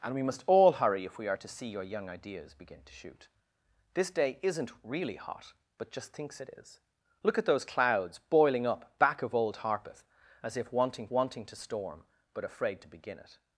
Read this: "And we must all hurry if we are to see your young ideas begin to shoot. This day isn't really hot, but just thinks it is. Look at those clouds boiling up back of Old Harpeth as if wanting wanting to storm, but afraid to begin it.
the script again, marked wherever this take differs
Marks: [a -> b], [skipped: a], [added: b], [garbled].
"And we must all hurry if we are to see your young ideas begin to shoot. This day isn't really hot, but just thinks it is. Look at those clouds boiling up back of Old Harpeth as if wanting wanting to storm, but afraid to begin it.